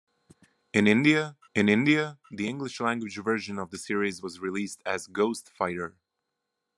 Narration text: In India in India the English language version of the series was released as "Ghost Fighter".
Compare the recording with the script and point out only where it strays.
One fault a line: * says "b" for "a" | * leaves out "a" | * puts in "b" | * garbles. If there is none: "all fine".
all fine